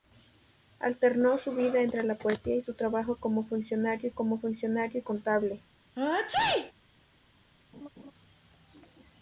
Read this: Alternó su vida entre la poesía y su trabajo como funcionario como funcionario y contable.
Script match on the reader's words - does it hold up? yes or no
yes